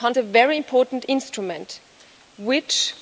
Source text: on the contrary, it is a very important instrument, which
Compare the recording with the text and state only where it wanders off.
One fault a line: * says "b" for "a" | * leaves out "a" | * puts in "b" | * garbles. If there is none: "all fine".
* leaves out "contrary it is"